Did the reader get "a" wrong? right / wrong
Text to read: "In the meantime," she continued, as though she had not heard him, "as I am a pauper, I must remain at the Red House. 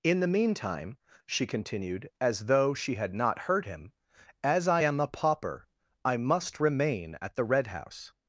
right